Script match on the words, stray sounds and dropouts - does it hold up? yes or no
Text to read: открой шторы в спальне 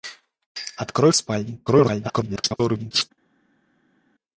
no